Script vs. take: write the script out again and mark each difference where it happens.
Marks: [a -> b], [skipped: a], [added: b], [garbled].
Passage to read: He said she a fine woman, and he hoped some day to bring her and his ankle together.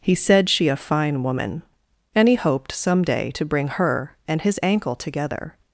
He said she a fine woman, and he hoped some day to bring her and his ankle together.